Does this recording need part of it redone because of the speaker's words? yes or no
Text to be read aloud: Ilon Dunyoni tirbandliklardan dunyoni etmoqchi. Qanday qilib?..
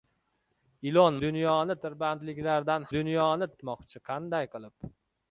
no